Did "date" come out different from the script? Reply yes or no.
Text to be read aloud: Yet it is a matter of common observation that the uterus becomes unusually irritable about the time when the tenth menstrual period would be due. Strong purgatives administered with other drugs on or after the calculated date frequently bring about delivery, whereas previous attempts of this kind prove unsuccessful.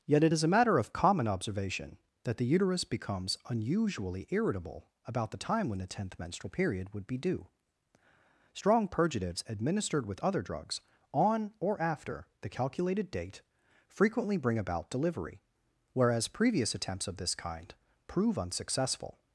no